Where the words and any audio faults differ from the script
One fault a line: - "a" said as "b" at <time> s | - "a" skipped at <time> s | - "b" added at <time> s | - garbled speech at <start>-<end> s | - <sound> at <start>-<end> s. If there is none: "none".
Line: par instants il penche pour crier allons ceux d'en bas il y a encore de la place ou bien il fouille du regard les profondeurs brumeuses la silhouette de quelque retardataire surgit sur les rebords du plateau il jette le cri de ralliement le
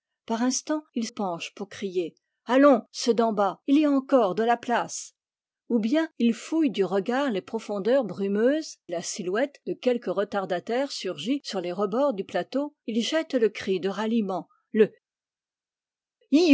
none